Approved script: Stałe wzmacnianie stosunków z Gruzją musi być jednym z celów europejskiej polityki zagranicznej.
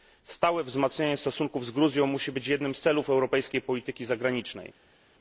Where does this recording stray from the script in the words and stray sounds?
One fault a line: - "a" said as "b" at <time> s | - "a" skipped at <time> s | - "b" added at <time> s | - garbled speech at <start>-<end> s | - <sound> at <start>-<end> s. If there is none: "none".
none